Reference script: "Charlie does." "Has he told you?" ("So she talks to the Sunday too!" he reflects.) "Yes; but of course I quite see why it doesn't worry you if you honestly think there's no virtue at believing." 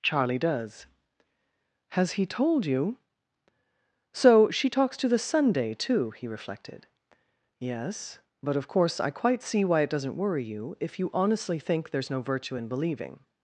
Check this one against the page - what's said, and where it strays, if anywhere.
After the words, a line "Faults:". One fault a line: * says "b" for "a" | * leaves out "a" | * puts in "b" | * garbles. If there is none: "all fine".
"Charlie does." "Has he told you?" ("So she talks to the Sunday too!" he reflected.) "Yes; but of course I quite see why it doesn't worry you if you honestly think there's no virtue in believing."
Faults:
* says "reflected" for "reflects"
* says "in" for "at"